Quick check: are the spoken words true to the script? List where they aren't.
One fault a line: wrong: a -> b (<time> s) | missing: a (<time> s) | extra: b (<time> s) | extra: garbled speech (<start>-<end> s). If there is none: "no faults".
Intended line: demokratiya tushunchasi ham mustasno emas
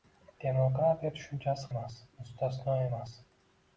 wrong: ham -> emas (1.7 s)